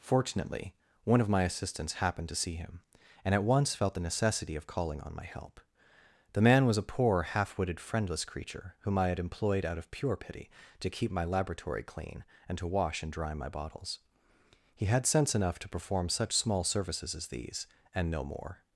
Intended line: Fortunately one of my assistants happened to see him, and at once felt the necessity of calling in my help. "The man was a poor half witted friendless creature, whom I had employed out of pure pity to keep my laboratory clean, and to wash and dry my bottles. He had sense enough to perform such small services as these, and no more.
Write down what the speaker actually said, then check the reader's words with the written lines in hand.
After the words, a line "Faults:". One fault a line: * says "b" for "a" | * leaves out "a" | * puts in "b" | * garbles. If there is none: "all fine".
Fortunately one of my assistants happened to see him, and at once felt the necessity of calling on my help. "The man was a poor half witted friendless creature, whom I had employed out of pure pity to keep my laboratory clean, and to wash and dry my bottles. He had sense enough to perform such small services as these, and no more.
Faults:
* says "on" for "in"